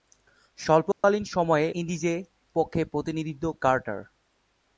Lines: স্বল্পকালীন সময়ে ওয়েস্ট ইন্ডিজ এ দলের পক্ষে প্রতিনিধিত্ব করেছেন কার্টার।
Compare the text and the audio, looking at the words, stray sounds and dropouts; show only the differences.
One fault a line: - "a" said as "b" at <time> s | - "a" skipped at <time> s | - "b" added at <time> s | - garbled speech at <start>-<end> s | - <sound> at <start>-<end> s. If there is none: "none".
- dropout at 0.9-1.0 s
- "ওয়েস্ট" skipped at 1.7 s
- "দলের" skipped at 2.2 s
- "করেছেন" skipped at 3.4 s